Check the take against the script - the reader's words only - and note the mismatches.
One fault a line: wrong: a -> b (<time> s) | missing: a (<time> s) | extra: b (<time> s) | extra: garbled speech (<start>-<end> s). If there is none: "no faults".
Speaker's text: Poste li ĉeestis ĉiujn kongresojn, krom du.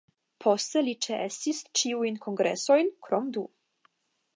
no faults